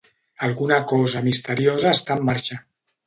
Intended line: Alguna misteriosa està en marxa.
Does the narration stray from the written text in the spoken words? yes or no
yes